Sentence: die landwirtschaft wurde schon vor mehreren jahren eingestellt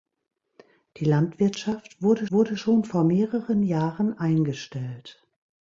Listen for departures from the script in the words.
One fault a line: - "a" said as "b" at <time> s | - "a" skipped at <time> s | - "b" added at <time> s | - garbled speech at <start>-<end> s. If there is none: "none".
- "wurde" added at 2.3 s